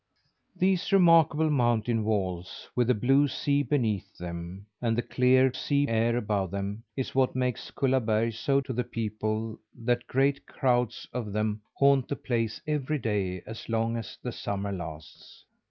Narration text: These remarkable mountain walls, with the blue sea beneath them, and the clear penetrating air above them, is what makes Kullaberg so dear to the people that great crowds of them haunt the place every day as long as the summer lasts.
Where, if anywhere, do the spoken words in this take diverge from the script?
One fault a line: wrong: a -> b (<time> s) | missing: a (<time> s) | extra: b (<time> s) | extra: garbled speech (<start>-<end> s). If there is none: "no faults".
wrong: penetrating -> sea (5.5 s)
missing: dear (8.6 s)